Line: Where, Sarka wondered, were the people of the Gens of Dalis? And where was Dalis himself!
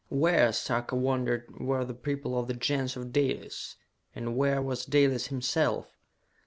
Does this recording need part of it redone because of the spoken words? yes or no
no